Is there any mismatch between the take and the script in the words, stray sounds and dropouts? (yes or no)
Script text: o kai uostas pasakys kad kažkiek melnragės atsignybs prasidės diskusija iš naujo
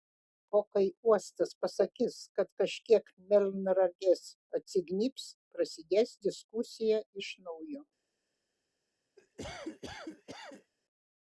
yes